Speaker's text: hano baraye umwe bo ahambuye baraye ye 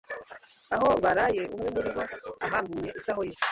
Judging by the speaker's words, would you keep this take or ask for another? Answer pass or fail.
fail